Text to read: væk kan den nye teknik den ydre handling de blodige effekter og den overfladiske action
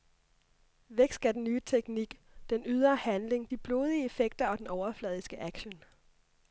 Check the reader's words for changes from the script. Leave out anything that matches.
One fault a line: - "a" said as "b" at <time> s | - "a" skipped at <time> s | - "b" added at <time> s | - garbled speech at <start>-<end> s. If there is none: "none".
- "kan" said as "skal" at 1.1 s